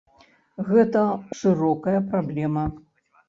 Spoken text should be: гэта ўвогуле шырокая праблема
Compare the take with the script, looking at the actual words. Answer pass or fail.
fail